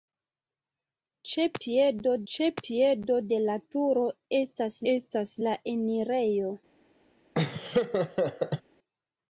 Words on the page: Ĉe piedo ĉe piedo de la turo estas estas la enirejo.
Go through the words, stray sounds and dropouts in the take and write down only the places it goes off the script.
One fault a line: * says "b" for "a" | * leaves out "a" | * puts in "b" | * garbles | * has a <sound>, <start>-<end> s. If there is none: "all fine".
* has a laugh, 7.3-8.6 s